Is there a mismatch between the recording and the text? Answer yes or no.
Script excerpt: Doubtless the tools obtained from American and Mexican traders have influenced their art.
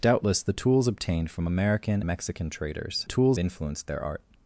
yes